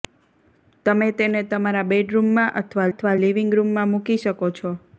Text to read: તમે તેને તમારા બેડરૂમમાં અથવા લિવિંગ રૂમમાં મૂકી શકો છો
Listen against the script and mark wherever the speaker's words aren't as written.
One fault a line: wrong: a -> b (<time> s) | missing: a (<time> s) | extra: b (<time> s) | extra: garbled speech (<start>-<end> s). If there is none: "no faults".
extra: અથવા (2.9 s)